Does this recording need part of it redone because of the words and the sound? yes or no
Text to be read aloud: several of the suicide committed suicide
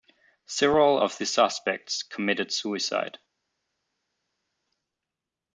yes